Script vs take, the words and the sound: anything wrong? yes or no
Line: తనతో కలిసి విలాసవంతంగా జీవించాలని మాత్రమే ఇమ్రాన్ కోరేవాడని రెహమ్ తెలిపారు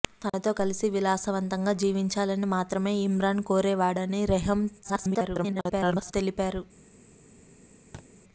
yes